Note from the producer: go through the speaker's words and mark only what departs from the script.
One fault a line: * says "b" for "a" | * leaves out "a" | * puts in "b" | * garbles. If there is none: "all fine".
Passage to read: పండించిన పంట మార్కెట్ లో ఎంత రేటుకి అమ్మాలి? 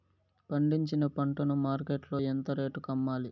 * puts in "ను"